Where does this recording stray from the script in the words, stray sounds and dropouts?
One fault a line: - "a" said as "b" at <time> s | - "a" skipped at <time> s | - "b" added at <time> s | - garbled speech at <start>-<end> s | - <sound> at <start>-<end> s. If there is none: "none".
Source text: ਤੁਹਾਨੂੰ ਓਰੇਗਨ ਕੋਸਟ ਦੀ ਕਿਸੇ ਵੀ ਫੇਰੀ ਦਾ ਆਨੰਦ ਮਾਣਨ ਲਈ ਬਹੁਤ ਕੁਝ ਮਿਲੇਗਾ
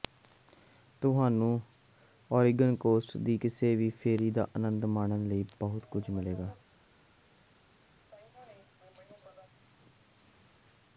none